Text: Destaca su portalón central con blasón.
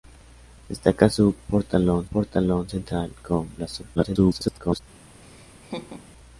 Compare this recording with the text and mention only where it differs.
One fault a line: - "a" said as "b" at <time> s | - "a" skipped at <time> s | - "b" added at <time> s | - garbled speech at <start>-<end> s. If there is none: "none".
- "portalón" added at 2.1 s
- garbled speech at 4.0-4.8 s